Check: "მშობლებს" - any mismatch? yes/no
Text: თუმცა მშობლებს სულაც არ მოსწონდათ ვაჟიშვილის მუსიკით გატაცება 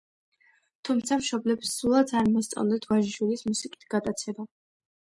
no